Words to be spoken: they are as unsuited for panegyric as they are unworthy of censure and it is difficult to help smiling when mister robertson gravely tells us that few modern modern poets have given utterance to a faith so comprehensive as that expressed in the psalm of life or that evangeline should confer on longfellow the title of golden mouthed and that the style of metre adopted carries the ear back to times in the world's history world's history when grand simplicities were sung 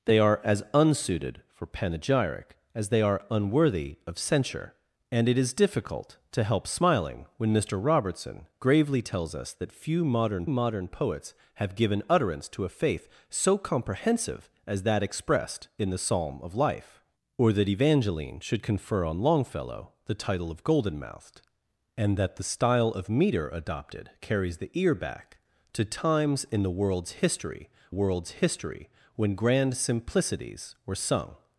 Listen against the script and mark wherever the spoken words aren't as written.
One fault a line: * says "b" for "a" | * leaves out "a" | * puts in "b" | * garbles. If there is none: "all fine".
all fine